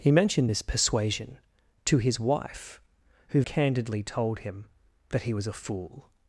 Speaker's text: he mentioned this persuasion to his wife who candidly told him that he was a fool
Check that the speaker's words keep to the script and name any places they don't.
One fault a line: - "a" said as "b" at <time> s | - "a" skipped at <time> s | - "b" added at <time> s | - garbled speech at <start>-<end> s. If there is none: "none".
none